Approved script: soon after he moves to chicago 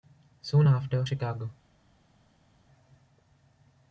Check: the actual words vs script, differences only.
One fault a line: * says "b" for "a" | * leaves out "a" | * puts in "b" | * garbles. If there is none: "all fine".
* leaves out "he moves to"